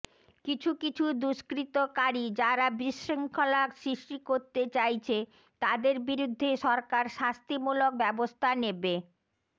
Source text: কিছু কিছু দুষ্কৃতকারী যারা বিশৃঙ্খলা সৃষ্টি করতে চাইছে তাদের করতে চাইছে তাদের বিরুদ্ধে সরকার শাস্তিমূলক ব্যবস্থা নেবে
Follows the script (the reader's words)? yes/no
no